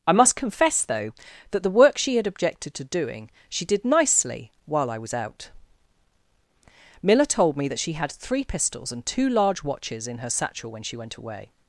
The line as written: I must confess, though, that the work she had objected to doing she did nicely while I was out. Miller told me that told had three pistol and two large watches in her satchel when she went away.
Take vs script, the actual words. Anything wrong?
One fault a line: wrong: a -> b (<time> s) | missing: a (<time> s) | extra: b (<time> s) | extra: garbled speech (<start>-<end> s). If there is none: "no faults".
wrong: told -> she (7.8 s)
wrong: pistol -> pistols (8.4 s)